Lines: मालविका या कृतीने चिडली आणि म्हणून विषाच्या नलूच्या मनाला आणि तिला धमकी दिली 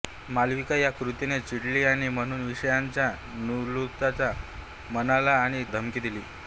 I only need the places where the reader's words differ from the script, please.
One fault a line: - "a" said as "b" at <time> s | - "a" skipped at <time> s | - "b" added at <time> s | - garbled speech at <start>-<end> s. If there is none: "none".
- "तिला" skipped at 5.6 s